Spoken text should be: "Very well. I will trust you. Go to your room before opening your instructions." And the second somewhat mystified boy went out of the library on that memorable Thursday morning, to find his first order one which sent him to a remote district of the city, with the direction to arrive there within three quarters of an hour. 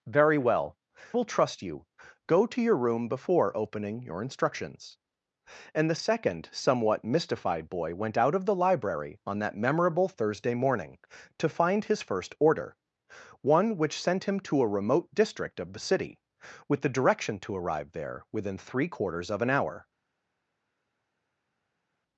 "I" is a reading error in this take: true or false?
true